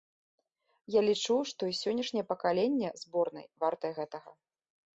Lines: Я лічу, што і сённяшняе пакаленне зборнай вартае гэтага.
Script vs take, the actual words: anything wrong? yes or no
no